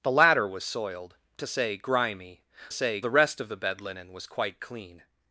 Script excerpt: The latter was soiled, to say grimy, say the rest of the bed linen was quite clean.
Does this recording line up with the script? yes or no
yes